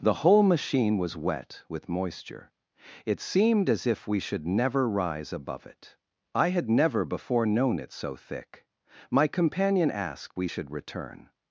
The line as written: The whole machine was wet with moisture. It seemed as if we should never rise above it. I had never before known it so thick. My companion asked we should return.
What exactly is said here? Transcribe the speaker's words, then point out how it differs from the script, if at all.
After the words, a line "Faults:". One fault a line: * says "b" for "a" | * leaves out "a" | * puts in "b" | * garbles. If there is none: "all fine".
The whole machine was wet with moisture. It seemed as if we should never rise above it. I had never before known it so thick. My companion asked we should return.
Faults:
all fine